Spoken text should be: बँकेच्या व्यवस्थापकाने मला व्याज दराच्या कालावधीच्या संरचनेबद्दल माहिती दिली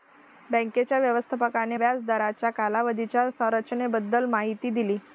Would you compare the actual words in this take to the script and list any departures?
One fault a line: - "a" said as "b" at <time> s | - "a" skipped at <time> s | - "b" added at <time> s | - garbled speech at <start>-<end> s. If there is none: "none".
- "मला" skipped at 1.8 s